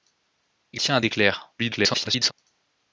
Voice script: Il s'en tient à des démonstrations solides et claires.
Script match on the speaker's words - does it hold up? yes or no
no